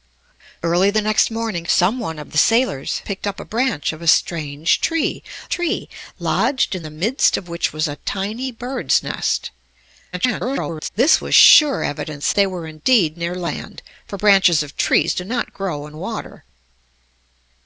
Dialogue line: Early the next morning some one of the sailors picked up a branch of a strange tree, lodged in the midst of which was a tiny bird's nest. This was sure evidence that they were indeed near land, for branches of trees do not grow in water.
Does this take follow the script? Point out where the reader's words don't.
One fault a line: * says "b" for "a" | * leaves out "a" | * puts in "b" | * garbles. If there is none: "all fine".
* puts in "tree"
* garbles
* leaves out "that"